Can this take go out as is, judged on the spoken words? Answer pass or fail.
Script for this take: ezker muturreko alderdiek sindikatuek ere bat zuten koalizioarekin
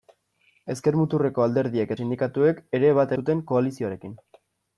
pass